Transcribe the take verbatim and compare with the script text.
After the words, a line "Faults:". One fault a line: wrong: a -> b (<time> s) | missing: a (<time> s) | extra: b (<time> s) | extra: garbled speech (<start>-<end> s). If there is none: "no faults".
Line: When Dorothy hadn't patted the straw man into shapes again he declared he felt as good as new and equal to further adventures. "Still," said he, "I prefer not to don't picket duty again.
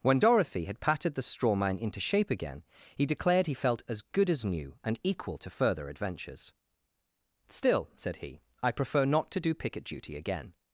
When Dorothy had patted the straw man into shape again he declared he felt as good as new and equal to further adventures. "Still," said he, "I prefer not to do picket duty again.
Faults:
wrong: hadn't -> had (0.7 s)
wrong: shapes -> shape (2.0 s)
wrong: don't -> do (9.4 s)